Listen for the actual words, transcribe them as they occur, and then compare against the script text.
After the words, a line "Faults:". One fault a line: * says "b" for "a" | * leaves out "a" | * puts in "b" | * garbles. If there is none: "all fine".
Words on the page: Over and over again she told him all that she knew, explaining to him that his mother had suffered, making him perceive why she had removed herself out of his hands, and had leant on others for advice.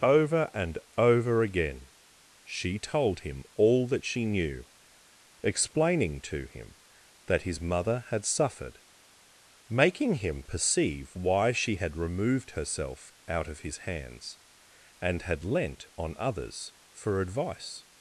Over and over again she told him all that she knew, explaining to him that his mother had suffered, making him perceive why she had removed herself out of his hands, and had leant on others for advice.
Faults:
all fine